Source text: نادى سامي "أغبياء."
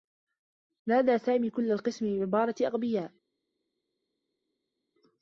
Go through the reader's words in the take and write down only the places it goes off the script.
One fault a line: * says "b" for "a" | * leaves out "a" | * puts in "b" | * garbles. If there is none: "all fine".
* puts in "كلّ القسم بعبارة"